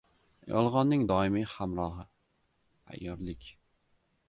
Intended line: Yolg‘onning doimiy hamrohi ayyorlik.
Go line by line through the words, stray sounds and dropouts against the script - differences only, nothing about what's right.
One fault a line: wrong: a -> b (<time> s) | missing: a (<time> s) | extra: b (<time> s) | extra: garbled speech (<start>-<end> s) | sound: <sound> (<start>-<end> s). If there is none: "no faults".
no faults